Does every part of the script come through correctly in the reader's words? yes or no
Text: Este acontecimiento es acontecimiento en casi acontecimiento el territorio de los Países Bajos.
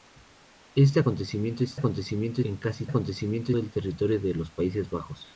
yes